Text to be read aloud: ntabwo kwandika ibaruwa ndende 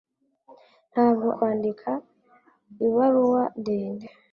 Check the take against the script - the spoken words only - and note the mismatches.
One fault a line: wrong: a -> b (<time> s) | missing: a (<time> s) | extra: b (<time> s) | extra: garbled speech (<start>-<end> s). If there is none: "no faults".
no faults